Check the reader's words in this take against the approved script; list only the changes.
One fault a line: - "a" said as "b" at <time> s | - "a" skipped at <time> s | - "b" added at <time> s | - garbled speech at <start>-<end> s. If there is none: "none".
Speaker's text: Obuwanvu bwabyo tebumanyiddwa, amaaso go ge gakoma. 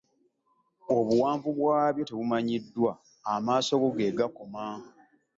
none